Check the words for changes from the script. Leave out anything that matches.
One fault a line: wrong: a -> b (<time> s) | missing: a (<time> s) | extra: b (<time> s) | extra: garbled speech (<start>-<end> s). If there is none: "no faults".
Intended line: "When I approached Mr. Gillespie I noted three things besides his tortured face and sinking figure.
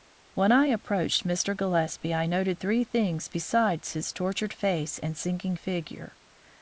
no faults